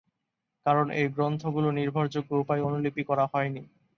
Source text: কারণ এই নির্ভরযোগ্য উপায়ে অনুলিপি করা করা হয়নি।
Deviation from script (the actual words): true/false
true